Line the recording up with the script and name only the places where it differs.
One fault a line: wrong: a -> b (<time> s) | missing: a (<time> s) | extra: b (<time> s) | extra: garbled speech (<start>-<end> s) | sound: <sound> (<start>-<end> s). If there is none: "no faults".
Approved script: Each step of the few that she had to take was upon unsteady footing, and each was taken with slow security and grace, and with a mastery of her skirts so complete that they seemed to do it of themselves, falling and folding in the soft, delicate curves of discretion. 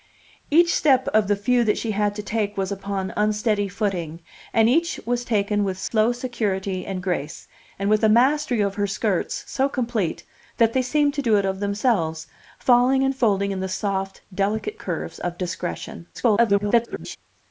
sound: dropout (5.9-5.9 s)
extra: garbled speech (16.1-17.2 s)